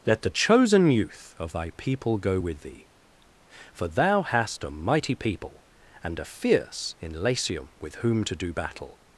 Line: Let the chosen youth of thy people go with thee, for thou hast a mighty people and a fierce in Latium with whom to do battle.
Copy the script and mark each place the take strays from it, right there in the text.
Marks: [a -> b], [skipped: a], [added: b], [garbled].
Let the chosen youth of thy people go with thee, for thou hast a mighty people and a fierce in Latium with whom to do battle.